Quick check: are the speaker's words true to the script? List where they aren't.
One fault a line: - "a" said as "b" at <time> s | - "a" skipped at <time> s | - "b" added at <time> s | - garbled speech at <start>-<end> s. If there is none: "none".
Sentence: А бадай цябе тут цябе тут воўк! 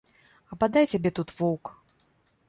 - "цябе тут" skipped at 1.3 s